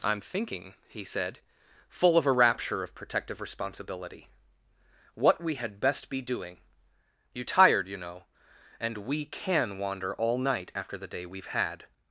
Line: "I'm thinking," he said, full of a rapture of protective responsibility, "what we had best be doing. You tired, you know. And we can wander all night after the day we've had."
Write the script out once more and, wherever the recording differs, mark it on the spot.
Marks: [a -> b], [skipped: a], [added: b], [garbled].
"I'm thinking," he said, full of a rapture of protective responsibility, "what we had best be doing. You tired, you know. And we can wander all night after the day we've had."